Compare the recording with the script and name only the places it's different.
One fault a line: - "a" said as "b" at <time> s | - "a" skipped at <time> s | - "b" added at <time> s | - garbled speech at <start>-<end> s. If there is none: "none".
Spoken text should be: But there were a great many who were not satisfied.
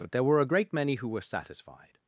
- "not" skipped at 1.2 s